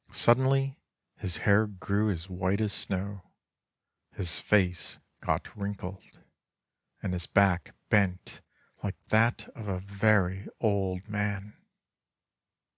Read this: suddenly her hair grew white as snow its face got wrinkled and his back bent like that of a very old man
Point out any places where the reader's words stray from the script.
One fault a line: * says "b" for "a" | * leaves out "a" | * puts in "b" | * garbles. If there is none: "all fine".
* says "his" for "her"
* puts in "as"
* says "his" for "its"